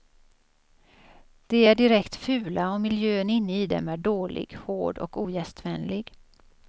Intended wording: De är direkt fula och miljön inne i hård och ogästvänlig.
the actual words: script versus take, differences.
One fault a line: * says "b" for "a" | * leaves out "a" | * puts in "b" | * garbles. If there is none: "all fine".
* puts in "dem är dålig"